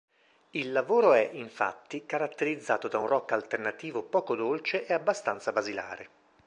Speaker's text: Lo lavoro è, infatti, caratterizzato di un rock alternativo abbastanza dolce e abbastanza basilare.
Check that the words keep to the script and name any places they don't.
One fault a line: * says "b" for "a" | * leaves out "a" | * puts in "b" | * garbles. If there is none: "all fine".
* says "Il" for "Lo"
* says "da" for "di"
* says "poco" for "abbastanza"